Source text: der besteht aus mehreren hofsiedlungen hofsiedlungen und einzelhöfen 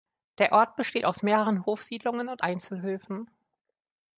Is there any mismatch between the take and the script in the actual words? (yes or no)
yes